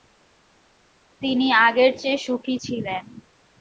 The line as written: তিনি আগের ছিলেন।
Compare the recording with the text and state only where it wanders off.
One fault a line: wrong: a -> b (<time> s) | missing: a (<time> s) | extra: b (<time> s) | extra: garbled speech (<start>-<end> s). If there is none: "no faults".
extra: চেয়ে সুখী (2.0 s)